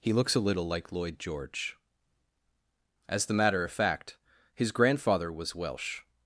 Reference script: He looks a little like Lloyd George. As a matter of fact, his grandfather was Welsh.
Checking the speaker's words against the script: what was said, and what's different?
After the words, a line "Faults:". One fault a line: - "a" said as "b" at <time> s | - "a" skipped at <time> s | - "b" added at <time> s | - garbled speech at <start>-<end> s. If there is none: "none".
He looks a little like Lloyd George. As the matter of fact, his grandfather was Welsh.
Faults:
- "a" said as "the" at 3.3 s